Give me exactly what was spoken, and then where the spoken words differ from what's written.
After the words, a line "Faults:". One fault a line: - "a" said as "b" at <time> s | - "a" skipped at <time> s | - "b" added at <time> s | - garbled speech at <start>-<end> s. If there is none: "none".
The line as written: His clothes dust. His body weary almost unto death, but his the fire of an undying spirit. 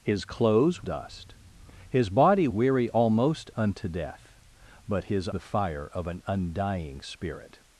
His clothes dust. His body weary almost unto death, but his the fire of an undying spirit.
Faults:
none